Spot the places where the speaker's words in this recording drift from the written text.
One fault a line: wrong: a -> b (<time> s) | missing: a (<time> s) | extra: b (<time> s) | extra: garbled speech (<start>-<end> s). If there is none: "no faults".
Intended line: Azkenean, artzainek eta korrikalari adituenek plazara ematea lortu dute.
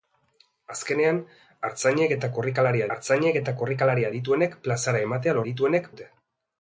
extra: artzainek eta korrikalari (2.9 s)
wrong: lortu -> adituenek (5.4 s)